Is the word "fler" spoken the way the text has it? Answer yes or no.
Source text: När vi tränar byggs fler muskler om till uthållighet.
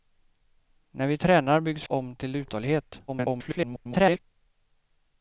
no